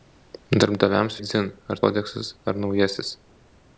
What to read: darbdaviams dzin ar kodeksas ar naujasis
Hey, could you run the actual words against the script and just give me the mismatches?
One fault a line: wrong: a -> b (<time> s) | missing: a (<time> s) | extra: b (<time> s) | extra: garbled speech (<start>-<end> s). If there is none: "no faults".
no faults